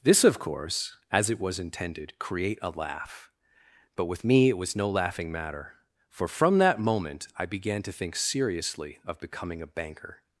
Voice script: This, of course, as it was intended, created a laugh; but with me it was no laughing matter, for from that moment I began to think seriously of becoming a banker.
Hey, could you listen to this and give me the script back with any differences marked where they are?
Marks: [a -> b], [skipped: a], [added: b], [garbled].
This, of course, as it was intended, [created -> create] a laugh; but with me it was no laughing matter, for from that moment I began to think seriously of becoming a banker.